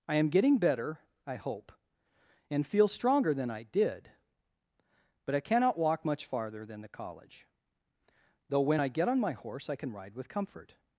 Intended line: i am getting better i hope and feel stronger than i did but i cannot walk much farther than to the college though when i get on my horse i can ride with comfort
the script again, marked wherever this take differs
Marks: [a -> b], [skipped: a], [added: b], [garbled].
i am getting better i hope and feel stronger than i did but i cannot walk much farther than [skipped: to] the college though when i get on my horse i can ride with comfort